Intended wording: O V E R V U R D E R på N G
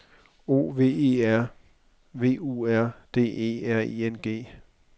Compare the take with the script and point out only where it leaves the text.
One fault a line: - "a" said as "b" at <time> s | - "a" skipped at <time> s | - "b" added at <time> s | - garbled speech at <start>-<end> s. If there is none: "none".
- "på" said as "I" at 3.8 s